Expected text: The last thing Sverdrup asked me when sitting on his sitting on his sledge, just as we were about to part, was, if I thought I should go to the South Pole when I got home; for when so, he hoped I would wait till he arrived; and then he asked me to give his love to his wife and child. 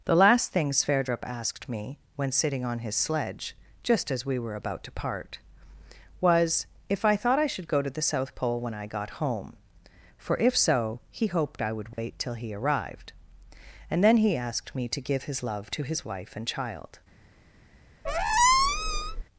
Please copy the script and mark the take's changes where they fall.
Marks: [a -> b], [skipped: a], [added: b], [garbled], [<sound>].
The last thing Sverdrup asked me when sitting on his [skipped: sitting on his] sledge, just as we were about to part, was, if I thought I should go to the South Pole when I got home; for [when -> if] so, he hoped I would wait [dropout] till he arrived; and then he asked me to give his love to his wife and child. [squeak]